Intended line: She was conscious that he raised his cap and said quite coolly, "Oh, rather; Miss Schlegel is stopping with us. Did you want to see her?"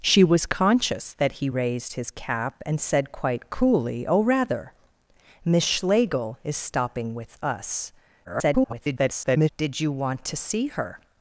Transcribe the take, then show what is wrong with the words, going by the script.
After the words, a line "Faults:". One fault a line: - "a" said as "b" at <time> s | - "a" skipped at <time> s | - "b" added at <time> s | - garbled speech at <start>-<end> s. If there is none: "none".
She was conscious that he raised his cap and said quite coolly, "Oh, rather; Miss Schlegel is stopping with us. [garbled] Did you want to see her?"
Faults:
- garbled speech at 8.2-9.5 s